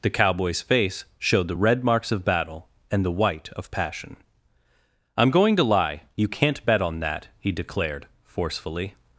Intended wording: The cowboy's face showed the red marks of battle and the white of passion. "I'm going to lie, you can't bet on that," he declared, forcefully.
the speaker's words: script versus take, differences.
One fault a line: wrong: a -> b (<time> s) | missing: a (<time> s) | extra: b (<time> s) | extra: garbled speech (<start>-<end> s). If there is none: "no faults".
no faults